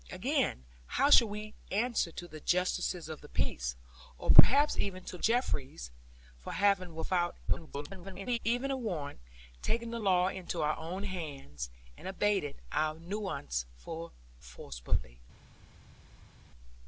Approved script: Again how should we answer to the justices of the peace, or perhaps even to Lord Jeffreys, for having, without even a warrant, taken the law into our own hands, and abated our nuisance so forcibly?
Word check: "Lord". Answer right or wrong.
wrong